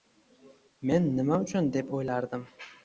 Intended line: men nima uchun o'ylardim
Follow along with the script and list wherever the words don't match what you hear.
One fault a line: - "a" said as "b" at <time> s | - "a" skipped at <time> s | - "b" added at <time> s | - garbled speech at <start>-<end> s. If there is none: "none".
- "deb" added at 1.8 s